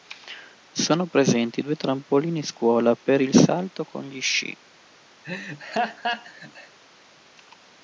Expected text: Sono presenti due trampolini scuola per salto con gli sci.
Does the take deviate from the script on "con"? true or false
false